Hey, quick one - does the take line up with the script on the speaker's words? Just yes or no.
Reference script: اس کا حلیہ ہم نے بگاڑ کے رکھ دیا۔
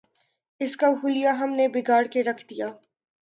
yes